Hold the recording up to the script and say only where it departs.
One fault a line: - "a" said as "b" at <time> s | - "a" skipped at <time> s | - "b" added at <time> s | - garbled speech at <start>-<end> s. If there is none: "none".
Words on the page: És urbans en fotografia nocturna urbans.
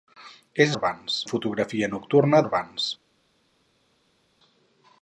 none